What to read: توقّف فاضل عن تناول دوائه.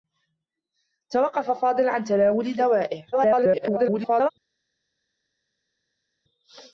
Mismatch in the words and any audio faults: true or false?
true